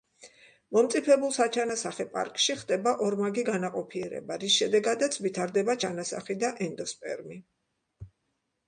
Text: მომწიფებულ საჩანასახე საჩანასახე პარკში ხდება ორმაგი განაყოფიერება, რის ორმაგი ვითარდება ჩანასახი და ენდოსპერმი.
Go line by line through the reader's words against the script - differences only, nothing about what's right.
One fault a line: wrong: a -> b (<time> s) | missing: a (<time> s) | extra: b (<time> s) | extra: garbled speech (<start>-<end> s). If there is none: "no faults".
missing: საჩანასახე (2.1 s)
wrong: ორმაგი -> შედეგადაც (4.6 s)